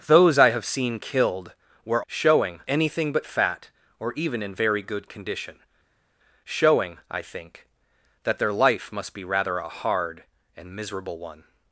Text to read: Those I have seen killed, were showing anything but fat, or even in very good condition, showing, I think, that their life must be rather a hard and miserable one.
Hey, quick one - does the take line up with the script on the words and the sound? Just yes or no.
yes